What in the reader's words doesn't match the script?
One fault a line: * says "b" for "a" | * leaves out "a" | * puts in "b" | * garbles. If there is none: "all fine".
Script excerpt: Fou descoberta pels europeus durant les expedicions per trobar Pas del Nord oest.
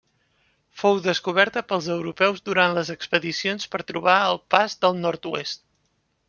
* puts in "el"